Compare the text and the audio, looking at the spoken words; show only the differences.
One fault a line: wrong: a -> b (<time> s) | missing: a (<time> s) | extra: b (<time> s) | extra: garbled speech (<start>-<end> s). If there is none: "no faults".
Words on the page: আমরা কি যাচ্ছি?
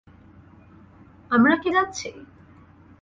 no faults